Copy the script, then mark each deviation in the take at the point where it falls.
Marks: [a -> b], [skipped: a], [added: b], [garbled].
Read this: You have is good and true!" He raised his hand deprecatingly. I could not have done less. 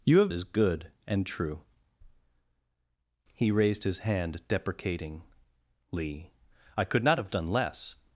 You have is good and true!" He raised his hand deprecatingly. I could not have done less.